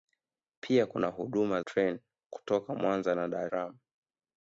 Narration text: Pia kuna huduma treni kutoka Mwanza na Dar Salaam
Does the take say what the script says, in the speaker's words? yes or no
yes